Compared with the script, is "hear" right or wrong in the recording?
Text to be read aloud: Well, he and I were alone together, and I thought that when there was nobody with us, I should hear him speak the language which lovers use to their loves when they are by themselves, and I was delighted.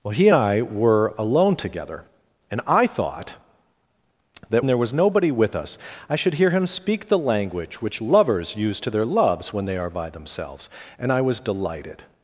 right